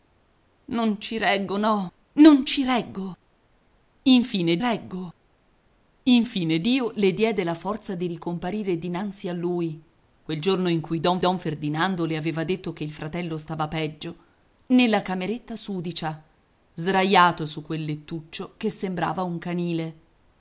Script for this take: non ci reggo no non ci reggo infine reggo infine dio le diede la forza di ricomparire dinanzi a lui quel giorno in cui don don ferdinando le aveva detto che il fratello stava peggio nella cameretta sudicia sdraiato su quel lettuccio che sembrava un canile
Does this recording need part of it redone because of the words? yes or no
no